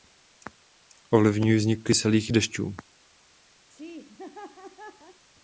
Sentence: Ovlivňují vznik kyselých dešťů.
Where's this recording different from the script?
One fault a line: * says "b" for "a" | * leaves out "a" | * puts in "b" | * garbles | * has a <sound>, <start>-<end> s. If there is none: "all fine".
* has a laugh, 3.7-5.3 s